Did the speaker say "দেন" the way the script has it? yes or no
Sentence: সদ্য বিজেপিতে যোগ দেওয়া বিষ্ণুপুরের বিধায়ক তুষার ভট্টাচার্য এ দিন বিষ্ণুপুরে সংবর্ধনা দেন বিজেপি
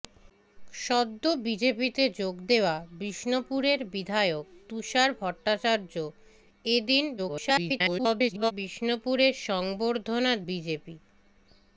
no